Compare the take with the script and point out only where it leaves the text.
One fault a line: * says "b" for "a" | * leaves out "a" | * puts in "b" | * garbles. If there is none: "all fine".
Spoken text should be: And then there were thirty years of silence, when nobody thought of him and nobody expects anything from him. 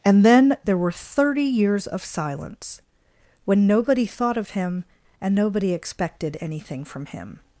* says "expected" for "expects"